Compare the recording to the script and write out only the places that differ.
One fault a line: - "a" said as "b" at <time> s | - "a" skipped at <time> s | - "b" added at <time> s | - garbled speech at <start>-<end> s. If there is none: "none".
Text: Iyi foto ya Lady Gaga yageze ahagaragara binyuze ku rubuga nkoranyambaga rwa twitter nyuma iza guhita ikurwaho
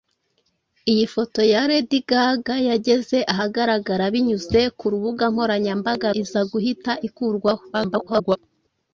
- "rwa twitter nyuma" skipped at 6.1 s
- garbled speech at 7.7-8.4 s